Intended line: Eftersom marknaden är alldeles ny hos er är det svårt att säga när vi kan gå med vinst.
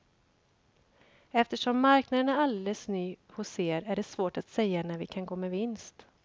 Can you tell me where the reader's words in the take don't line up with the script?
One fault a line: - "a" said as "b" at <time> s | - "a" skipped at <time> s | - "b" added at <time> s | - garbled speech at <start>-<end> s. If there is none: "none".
none